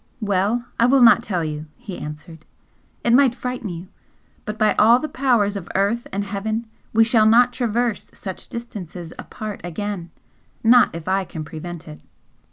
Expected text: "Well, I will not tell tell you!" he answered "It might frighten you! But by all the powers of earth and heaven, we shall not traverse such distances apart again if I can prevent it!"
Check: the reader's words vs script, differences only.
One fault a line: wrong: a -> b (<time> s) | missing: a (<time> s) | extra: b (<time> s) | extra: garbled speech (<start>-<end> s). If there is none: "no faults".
missing: tell (1.4 s)
extra: not (10.6 s)